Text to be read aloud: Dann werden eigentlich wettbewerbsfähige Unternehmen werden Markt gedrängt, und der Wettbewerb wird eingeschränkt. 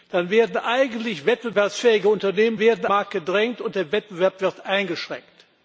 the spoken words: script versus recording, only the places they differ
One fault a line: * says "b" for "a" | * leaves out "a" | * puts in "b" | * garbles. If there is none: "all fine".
all fine